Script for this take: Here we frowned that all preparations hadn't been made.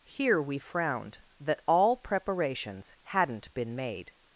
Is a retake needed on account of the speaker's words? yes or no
no